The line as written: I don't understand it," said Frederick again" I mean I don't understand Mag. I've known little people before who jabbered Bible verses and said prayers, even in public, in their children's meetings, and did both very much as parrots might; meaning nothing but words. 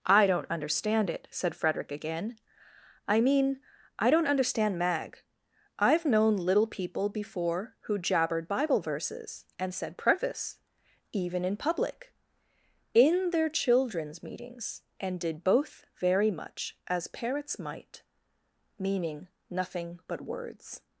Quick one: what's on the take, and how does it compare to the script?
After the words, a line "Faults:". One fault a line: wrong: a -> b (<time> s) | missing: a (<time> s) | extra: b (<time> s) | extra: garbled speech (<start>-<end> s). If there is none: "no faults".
I don't understand it," said Frederick again" I mean I don't understand Mag. I've known little people before who jabbered Bible verses and said preface, even in public, in their children's meetings, and did both very much as parrots might; meaning nothing but words.
Faults:
wrong: prayers -> preface (10.0 s)